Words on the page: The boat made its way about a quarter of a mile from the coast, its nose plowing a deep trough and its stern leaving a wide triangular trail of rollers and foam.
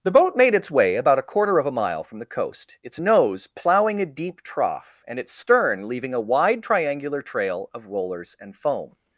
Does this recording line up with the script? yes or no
yes